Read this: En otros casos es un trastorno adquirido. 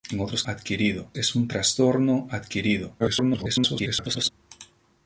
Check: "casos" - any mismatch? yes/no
yes